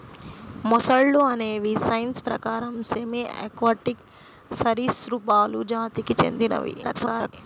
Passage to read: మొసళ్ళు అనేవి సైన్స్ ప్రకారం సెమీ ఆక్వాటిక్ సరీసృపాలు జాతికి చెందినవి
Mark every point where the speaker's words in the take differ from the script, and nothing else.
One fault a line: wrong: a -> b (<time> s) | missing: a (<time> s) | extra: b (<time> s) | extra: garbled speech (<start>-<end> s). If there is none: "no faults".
extra: garbled speech (6.8-7.3 s)